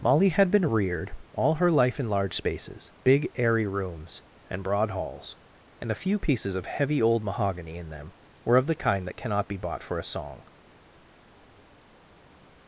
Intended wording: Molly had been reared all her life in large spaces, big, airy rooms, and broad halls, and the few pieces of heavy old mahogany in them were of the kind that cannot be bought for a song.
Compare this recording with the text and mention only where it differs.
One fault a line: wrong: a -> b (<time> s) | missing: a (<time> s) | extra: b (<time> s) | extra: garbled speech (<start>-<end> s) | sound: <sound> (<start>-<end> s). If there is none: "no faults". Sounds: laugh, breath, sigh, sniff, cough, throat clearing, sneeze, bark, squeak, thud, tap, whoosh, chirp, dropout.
wrong: the -> a (5.9 s)